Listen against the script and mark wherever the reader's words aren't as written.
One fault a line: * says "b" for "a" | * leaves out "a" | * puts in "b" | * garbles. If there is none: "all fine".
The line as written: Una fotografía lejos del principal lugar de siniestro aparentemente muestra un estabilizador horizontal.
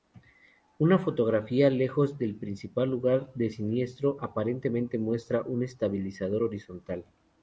all fine